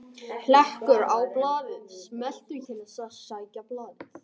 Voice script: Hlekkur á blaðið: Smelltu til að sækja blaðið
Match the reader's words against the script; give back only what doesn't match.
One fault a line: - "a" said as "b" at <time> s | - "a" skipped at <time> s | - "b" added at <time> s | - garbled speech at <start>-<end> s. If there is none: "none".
none